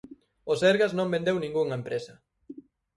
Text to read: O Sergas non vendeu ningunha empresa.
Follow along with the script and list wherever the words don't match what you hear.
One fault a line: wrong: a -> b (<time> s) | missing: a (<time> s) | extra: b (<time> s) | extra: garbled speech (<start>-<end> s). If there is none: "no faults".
no faults